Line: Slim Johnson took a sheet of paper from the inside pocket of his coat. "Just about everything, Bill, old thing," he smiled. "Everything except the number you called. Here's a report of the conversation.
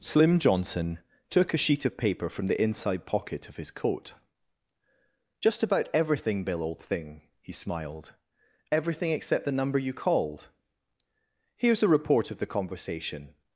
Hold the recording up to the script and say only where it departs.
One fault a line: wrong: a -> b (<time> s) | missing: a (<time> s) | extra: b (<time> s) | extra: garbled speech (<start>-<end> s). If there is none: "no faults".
no faults